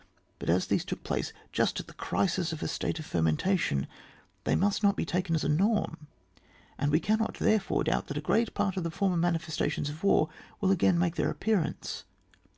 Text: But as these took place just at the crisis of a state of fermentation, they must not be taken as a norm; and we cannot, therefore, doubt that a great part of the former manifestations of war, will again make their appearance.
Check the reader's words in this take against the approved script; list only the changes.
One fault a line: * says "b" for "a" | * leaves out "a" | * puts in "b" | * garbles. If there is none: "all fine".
all fine